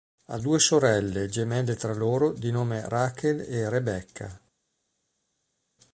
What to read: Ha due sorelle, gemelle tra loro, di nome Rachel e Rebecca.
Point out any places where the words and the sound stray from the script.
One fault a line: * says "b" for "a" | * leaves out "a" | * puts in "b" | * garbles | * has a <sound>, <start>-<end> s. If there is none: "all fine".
all fine